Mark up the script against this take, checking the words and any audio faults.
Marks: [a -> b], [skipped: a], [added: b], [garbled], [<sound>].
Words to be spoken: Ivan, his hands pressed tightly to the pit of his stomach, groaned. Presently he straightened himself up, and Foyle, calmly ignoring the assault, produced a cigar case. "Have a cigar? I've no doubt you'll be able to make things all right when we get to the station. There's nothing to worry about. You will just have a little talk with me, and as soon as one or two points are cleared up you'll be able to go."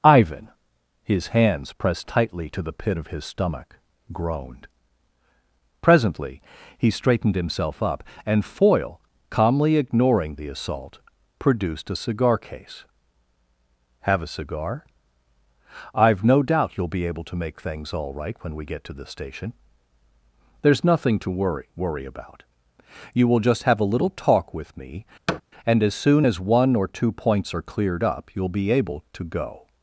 Ivan, his hands pressed tightly to the pit of his stomach, groaned. Presently he straightened himself up, and Foyle, calmly ignoring the assault, produced a cigar case. "Have a cigar? I've no doubt you'll be able to make things all right when we get to the station. There's nothing to worry [added: worry] about. You will just have a little talk with me, [thud] and as soon as one or two points are cleared up you'll be able to go."